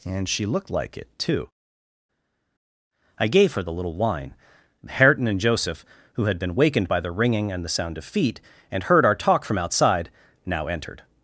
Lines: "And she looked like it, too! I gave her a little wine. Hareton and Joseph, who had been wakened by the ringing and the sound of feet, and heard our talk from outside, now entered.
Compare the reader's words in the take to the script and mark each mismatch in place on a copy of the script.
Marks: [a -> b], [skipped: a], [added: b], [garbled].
"And she looked like it, too! I gave her [a -> the] little wine. Hareton and Joseph, who had been wakened by the ringing and the sound of feet, and heard our talk from outside, now entered.